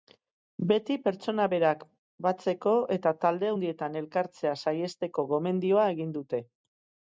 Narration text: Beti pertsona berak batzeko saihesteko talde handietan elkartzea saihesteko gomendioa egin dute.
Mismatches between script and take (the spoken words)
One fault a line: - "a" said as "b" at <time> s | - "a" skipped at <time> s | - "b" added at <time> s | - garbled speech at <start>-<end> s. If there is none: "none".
- "saihesteko" said as "eta" at 3.0 s